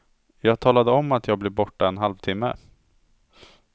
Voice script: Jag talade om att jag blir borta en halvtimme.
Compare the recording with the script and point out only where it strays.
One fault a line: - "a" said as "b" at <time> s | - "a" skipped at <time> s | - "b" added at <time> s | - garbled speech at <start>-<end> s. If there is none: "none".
none